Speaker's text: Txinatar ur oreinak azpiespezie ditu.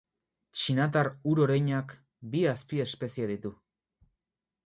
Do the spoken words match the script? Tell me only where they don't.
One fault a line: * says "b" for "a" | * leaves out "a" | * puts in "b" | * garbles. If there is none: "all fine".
* puts in "bi"